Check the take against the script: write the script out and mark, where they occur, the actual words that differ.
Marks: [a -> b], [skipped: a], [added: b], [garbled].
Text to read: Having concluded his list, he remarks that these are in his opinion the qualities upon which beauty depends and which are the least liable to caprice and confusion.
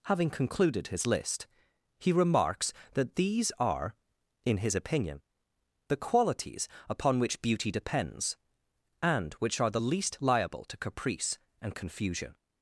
Having concluded his list, he remarks that these are in his opinion the qualities upon which beauty depends and which are the least liable to caprice and confusion.